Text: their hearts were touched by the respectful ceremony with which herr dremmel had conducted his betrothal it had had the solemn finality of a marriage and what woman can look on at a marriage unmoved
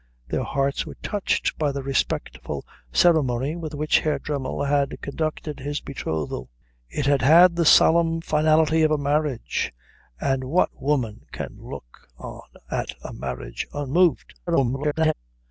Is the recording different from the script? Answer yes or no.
yes